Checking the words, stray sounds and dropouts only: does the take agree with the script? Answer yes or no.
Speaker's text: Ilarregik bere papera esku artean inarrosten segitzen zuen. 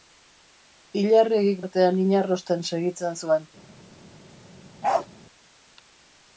no